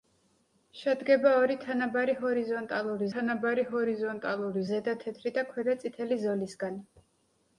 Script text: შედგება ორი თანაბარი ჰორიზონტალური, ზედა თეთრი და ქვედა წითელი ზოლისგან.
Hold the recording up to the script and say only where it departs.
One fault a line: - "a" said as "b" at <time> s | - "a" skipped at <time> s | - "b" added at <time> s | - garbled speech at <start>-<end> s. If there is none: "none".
- "თანაბარი ჰორიზონტალური" added at 3.1 s